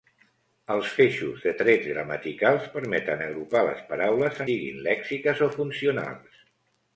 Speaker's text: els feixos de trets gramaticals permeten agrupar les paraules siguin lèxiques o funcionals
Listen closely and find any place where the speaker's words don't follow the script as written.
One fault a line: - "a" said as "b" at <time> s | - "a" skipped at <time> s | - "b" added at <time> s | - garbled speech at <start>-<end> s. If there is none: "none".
none